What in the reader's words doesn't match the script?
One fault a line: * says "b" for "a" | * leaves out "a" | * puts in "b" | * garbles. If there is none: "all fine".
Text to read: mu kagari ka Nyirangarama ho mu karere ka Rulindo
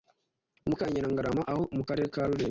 * leaves out "kagari"